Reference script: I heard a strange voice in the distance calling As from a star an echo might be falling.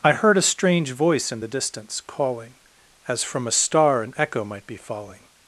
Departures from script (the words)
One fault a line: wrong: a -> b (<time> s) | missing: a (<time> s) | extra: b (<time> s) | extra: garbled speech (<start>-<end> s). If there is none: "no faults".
no faults